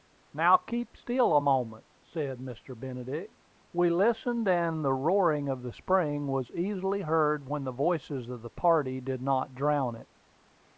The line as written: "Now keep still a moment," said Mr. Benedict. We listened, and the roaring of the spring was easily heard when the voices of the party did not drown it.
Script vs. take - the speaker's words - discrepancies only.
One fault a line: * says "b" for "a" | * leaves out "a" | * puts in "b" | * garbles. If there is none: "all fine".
all fine